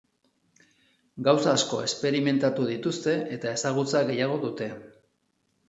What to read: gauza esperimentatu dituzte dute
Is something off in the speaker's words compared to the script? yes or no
yes